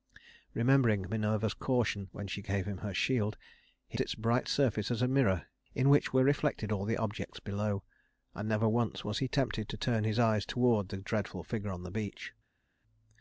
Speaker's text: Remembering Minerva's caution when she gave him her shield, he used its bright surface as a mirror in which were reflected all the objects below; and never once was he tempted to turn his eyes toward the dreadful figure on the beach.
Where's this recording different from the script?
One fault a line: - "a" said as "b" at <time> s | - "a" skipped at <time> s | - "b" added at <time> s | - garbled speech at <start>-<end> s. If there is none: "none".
- "used" skipped at 4.0 s